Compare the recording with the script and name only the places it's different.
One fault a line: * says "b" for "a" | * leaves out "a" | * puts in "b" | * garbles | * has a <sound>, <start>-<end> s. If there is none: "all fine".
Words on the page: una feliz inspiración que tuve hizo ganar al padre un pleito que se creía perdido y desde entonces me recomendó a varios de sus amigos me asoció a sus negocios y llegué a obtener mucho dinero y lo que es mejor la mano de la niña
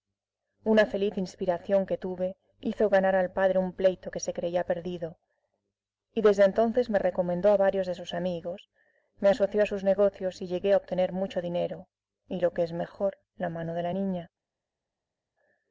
all fine